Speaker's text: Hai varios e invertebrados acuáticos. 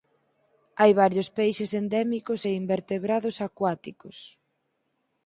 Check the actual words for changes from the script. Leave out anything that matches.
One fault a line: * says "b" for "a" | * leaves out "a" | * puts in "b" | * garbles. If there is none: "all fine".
* puts in "peixes endémicos"